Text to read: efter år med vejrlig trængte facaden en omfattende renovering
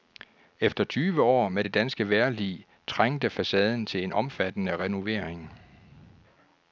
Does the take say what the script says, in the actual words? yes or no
no